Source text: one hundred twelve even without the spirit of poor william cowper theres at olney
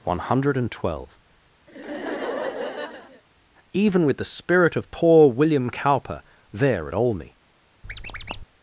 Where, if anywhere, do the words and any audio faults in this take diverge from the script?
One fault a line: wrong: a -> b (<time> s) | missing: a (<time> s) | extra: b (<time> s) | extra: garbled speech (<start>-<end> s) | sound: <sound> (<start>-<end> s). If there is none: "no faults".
sound: laugh (1.7-3.2 s)
wrong: without -> with (4.0 s)
wrong: theres -> there (6.5 s)
sound: squeak (7.8-8.4 s)